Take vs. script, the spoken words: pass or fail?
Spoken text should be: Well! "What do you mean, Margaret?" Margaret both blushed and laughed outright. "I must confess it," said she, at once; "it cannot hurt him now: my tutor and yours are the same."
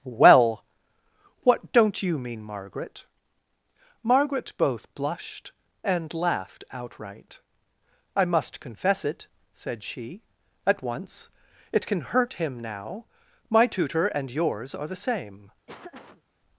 fail